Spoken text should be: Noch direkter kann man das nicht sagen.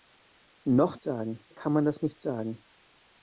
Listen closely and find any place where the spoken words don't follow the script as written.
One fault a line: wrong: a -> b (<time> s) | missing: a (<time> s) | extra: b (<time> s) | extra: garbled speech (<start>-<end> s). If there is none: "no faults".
wrong: direkter -> sagen (1.0 s)